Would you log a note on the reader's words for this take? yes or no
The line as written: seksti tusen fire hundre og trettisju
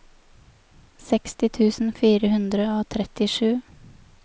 no